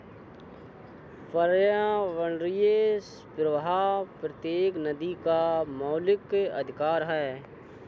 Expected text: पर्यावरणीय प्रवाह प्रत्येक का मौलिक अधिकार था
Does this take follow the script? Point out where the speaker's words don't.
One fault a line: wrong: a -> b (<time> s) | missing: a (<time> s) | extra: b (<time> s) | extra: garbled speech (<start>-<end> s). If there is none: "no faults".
extra: नदी (4.8 s)
wrong: था -> है (7.0 s)